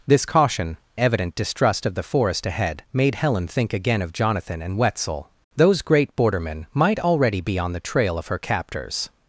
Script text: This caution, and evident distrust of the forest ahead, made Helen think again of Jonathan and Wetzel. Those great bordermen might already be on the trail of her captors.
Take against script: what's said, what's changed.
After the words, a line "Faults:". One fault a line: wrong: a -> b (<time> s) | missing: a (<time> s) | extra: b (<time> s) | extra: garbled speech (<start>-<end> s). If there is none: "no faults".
This caution, evident distrust of the forest ahead, made Helen think again of Jonathan and Wetzel. Those great bordermen might already be on the trail of her captors.
Faults:
missing: and (0.8 s)